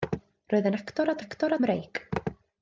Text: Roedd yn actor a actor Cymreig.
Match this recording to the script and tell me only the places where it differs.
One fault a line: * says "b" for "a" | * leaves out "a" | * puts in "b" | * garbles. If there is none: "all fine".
all fine